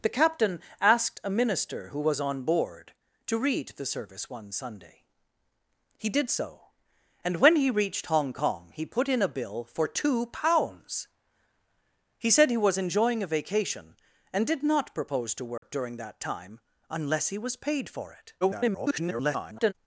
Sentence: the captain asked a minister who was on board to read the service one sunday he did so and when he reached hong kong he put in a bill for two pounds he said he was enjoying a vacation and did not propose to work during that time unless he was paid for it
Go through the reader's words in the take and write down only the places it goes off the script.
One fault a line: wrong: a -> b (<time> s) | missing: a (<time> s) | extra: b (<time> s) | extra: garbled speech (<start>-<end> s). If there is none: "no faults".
extra: garbled speech (18.4-19.7 s)